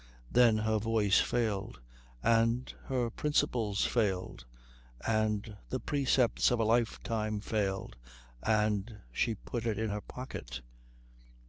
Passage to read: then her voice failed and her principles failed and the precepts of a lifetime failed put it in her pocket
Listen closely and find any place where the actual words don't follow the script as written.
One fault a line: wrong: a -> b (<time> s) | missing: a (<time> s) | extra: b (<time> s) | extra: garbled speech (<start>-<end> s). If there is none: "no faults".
extra: and she (8.4 s)